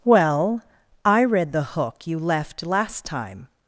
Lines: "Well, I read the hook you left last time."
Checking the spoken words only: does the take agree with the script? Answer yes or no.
yes